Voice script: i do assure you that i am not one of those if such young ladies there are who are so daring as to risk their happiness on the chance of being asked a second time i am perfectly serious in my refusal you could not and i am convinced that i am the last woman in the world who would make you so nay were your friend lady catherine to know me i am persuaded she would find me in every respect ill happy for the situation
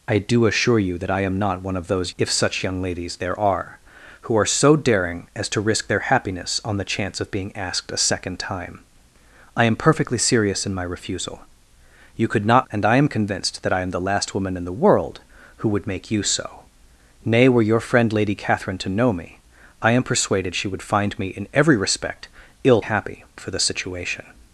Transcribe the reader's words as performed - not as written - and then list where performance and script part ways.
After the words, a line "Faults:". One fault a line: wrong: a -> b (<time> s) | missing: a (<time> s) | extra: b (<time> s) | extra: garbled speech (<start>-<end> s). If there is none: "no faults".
i do assure you that i am not one of those if such young ladies there are who are so daring as to risk their happiness on the chance of being asked a second time i am perfectly serious in my refusal you could not and i am convinced that i am the last woman in the world who would make you so nay were your friend lady catherine to know me i am persuaded she would find me in every respect ill happy for the situation
Faults:
no faults